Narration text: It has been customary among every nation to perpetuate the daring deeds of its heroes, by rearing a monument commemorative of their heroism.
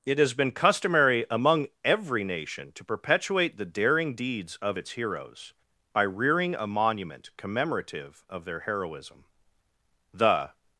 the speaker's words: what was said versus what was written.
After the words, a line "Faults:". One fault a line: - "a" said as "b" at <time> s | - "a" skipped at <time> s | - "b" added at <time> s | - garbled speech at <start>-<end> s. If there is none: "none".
It has been customary among every nation to perpetuate the daring deeds of its heroes, by rearing a monument commemorative of their heroism. The
Faults:
- "The" added at 10.1 s